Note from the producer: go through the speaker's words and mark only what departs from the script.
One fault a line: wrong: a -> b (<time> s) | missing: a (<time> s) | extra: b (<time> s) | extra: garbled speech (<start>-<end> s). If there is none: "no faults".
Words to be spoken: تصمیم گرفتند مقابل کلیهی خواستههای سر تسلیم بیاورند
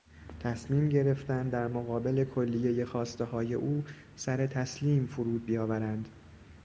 extra: در (1.5 s)
extra: او (3.5 s)
extra: فرود (5.0 s)